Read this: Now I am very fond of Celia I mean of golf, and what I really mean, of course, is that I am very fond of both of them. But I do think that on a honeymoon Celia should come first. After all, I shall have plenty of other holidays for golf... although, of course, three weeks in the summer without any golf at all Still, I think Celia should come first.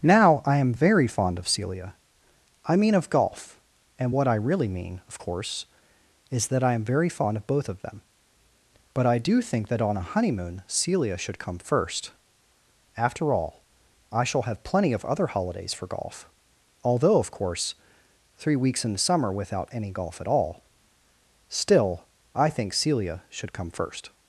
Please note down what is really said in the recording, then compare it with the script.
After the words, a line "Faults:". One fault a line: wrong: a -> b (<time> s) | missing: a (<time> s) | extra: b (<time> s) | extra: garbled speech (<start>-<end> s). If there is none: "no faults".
Now I am very fond of Celia I mean of golf, and what I really mean, of course, is that I am very fond of both of them. But I do think that on a honeymoon Celia should come first. After all, I shall have plenty of other holidays for golf... although, of course, three weeks in the summer without any golf at all Still, I think Celia should come first.
Faults:
no faults